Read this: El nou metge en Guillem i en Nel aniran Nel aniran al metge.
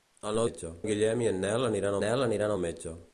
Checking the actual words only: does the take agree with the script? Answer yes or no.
yes